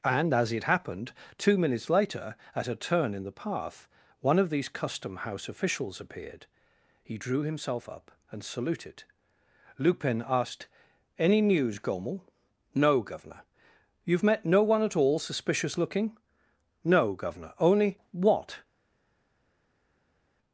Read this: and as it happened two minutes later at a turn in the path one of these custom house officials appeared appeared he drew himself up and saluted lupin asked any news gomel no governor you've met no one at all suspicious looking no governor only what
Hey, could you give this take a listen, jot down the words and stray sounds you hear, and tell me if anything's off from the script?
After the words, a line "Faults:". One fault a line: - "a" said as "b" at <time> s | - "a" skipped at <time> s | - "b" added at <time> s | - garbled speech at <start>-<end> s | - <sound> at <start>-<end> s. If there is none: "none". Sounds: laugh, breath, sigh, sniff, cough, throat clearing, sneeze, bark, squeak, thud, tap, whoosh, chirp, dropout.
and as it happened two minutes later at a turn in the path one of these custom house officials appeared he drew himself up and saluted lupin asked any news gomel no governor you've met no one at all suspicious looking no governor only what
Faults:
- "appeared" skipped at 6.5 s